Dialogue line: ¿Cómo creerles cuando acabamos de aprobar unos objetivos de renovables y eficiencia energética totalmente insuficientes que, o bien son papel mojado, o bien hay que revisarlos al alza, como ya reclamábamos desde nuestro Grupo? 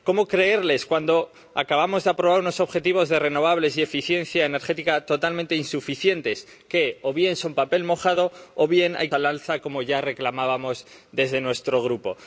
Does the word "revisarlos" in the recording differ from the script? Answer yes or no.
yes